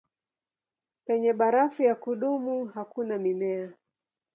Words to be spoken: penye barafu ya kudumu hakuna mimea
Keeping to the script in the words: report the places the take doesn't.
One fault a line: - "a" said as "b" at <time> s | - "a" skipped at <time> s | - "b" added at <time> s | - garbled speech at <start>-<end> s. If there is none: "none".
none